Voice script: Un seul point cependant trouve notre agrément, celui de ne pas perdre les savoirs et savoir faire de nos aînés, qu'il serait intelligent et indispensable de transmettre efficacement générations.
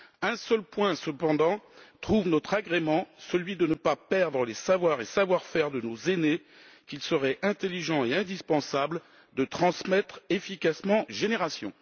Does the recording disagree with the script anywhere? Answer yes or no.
no